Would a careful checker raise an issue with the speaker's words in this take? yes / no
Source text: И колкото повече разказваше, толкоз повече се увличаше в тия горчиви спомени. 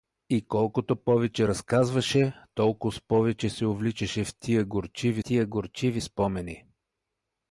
yes